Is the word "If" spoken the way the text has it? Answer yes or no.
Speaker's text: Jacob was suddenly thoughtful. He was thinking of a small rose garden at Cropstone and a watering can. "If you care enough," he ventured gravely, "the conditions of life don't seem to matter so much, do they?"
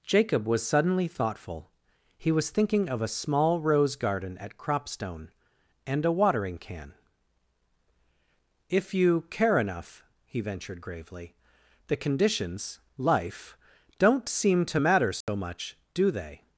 yes